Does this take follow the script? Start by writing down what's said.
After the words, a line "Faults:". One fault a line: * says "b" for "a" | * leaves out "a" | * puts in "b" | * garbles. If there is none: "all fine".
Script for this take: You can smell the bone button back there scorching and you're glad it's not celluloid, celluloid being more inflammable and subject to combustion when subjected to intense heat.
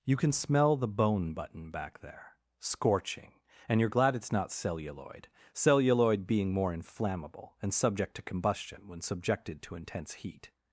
You can smell the bone button back there scorching and you're glad it's not celluloid, celluloid being more inflammable and subject to combustion when subjected to intense heat.
Faults:
all fine